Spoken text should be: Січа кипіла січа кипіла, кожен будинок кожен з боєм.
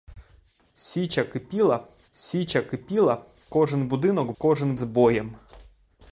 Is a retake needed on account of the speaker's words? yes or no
no